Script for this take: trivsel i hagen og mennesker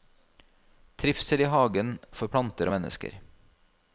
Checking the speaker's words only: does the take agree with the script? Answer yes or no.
no